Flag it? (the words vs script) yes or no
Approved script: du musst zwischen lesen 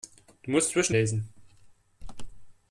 no